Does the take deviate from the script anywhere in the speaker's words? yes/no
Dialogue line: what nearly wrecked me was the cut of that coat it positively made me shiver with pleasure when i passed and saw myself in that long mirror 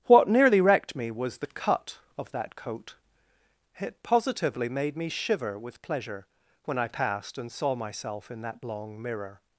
no